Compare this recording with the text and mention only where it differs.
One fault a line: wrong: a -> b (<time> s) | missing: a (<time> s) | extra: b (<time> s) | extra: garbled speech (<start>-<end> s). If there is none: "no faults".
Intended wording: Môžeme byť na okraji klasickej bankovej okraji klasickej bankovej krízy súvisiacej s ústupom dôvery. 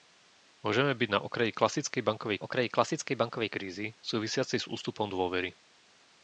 no faults